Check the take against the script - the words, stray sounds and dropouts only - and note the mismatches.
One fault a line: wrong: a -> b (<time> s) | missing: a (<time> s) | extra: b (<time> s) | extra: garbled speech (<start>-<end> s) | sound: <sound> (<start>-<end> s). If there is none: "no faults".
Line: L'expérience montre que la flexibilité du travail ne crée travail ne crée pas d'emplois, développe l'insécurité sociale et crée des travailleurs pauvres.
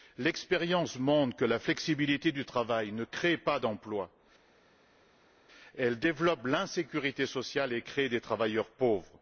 missing: travail ne crée (3.4 s)
extra: elle (5.8 s)